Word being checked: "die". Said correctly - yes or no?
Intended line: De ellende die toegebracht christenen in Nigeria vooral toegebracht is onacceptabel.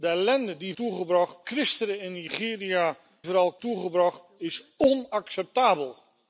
yes